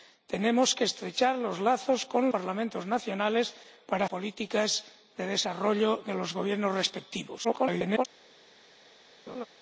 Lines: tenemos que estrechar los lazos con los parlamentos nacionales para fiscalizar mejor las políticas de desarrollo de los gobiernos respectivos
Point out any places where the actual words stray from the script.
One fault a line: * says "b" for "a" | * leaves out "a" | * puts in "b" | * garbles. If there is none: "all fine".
* leaves out "los"
* leaves out "fiscalizar mejor las"
* garbles